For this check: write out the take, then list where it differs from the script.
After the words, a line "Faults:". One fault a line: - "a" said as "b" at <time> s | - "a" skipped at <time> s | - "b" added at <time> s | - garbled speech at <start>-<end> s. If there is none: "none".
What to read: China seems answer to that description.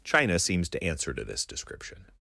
China seems to answer to this description.
Faults:
- "to" added at 0.7 s
- "that" said as "this" at 1.2 s